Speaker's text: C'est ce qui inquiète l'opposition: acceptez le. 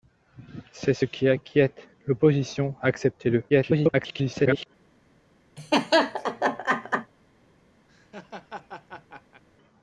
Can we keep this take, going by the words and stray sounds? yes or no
no